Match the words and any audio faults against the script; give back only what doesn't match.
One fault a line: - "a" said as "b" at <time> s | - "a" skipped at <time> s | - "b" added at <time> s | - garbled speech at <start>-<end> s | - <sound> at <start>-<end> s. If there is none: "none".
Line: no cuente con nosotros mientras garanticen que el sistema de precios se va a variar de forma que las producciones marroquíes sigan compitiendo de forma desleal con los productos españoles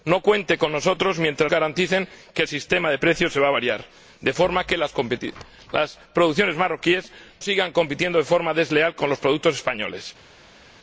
none